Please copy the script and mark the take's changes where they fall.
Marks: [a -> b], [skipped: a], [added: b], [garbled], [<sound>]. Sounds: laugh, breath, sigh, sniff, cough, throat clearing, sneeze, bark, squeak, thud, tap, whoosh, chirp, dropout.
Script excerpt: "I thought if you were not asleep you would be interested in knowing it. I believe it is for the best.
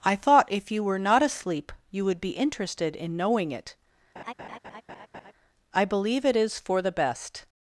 "I thought if you were not asleep you would be interested in knowing it. [laugh] I believe it is for the best.